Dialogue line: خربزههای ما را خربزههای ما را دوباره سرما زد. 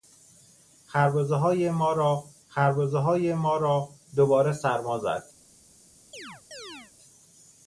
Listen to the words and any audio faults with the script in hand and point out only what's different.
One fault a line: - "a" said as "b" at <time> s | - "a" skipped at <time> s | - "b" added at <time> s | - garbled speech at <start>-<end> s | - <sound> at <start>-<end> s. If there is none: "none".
- chirp at 6.1-6.9 s